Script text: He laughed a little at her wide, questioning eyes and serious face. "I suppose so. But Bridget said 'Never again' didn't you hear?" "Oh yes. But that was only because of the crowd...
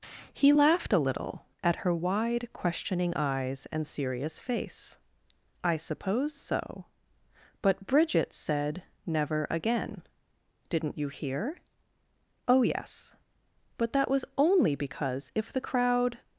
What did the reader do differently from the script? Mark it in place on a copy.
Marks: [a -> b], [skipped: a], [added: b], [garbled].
He laughed a little at her wide, questioning eyes and serious face. "I suppose so. But Bridget said 'Never again' didn't you hear?" "Oh yes. But that was only because [of -> if] the crowd...